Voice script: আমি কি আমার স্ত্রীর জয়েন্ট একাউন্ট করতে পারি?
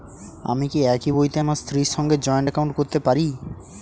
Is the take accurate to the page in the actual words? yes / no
no